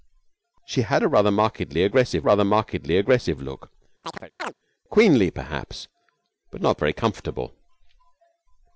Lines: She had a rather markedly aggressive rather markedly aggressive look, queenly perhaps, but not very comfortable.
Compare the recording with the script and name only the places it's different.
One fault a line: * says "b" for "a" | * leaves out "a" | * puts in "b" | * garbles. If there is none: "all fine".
all fine